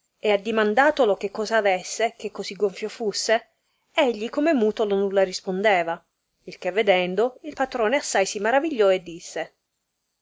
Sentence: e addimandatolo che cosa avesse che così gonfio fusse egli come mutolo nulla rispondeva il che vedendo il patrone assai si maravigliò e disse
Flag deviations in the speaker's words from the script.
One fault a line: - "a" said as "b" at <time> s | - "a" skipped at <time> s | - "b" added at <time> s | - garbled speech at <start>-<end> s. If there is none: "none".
none